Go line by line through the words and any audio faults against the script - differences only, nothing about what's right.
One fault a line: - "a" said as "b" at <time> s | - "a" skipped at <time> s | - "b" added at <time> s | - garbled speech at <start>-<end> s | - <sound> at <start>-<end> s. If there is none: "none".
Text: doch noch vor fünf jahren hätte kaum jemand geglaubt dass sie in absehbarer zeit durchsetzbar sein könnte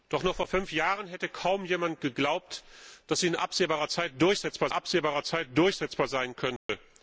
- "absehbarer zeit durchsetzbar" added at 4.7 s
- dropout at 6.6-6.7 s